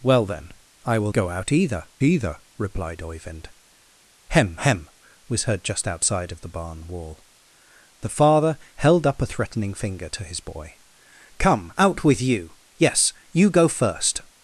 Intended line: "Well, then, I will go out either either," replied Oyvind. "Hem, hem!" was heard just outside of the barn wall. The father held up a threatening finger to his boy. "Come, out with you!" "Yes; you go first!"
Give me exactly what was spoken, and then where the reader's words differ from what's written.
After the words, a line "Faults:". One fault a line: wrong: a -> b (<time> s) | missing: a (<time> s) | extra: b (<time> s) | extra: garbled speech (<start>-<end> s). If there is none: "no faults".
"Well, then, I will go out either either," replied Oyvind. "Hem, hem!" was heard just outside of the barn wall. The father held up a threatening finger to his boy. "Come, out with you!" "Yes; you go first!"
Faults:
no faults